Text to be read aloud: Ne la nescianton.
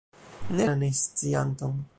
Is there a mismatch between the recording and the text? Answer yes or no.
no